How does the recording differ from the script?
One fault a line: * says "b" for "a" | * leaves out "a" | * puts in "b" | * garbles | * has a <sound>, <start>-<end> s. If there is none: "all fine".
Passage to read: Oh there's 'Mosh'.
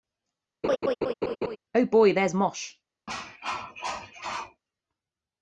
* has a laugh, 0.6-1.6 s
* puts in "boy"
* has a cough, 3.1-4.6 s